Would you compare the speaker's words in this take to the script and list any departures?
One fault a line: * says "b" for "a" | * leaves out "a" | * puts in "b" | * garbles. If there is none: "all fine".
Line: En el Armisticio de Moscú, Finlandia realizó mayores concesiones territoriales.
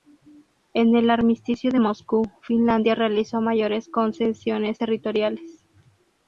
all fine